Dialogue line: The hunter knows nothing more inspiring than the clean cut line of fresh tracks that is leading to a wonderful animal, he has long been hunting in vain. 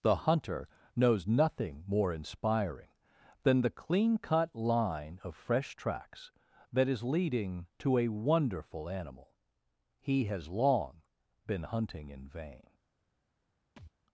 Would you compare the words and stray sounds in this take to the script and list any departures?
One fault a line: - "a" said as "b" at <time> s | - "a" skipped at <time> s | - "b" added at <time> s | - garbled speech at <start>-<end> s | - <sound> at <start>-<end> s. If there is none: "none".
- thud at 13.8-13.9 s